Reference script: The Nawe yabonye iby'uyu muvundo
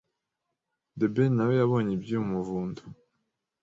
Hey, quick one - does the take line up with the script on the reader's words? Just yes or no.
no